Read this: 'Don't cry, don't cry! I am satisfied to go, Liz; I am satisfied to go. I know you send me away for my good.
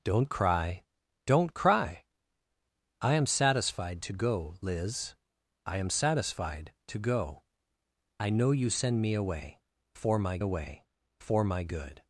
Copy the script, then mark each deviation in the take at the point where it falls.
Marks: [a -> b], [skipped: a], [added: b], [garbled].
'Don't cry, don't cry! I am satisfied to go, Liz; I am satisfied to go. I know you send me away for my [added: away for my] good.